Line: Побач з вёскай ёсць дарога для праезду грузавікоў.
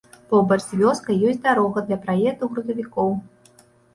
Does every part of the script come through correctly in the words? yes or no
yes